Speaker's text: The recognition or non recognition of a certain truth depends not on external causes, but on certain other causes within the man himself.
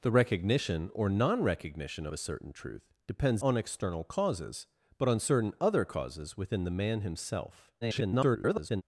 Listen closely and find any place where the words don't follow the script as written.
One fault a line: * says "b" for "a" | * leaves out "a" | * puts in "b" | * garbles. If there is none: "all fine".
* leaves out "of"
* leaves out "not"
* garbles